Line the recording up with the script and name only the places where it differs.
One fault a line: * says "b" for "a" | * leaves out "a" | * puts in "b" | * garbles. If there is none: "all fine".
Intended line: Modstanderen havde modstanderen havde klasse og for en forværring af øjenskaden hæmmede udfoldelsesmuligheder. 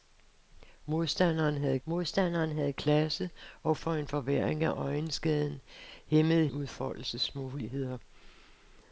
all fine